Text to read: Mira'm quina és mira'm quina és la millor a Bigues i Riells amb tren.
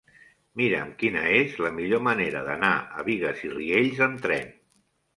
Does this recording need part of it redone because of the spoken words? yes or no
yes